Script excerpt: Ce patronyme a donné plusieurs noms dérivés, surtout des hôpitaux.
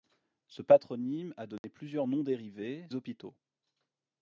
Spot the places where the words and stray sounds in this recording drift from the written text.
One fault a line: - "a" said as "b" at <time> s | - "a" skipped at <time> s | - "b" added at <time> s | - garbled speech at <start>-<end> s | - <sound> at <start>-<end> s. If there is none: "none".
- dropout at 1.6-1.6 s
- "surtout des" skipped at 2.9 s